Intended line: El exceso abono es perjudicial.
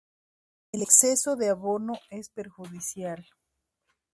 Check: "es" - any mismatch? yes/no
no